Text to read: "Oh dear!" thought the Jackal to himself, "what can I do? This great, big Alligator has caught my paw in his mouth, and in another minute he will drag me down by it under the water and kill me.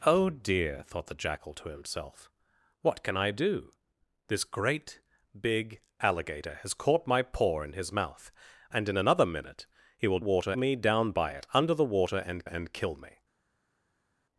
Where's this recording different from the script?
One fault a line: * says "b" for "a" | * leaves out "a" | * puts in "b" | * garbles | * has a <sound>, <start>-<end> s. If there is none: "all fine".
* says "water" for "drag"
* puts in "and"